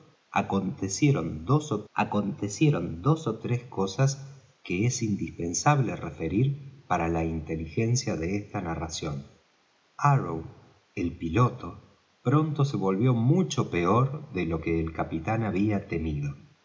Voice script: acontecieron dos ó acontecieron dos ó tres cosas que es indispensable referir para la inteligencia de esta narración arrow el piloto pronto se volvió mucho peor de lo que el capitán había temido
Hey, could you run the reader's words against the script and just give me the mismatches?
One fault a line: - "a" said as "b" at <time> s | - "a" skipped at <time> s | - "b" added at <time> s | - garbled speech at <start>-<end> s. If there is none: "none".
none